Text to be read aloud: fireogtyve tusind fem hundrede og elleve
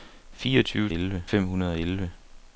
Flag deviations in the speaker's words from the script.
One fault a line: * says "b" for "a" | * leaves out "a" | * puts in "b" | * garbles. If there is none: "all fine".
* says "elleve" for "tusind"